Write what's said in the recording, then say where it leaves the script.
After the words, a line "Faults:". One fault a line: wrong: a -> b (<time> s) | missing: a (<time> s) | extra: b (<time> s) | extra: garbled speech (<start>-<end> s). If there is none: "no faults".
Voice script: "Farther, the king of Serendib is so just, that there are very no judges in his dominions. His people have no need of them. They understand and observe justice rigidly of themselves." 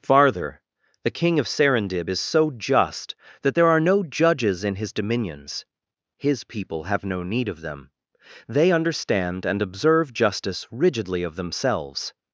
"Farther, the king of Serendib is so just, that there are no judges in his dominions. His people have no need of them. They understand and observe justice rigidly of themselves."
Faults:
missing: very (3.8 s)